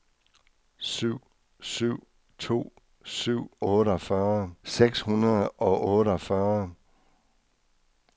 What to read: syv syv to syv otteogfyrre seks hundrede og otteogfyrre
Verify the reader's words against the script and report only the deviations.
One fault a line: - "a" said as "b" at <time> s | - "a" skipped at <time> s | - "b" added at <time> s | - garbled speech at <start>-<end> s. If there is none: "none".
none